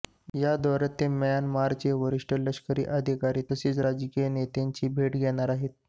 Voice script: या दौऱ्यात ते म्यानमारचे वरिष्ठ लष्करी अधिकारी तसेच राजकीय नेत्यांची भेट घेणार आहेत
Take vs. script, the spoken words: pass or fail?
pass